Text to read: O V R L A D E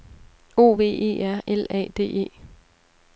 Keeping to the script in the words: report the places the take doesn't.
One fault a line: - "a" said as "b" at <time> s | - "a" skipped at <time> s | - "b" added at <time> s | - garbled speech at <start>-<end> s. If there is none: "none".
- "E" added at 0.9 s